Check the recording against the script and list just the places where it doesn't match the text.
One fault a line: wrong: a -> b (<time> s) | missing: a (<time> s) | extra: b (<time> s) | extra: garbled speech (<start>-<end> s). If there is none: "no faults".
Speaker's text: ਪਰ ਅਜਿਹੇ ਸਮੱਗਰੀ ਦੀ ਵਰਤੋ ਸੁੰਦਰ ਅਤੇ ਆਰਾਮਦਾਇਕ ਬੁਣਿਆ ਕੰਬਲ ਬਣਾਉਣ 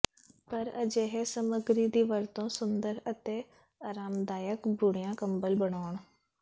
no faults